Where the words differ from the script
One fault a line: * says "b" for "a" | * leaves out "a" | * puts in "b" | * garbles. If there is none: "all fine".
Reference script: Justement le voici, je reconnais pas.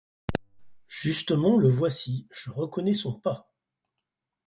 * puts in "son"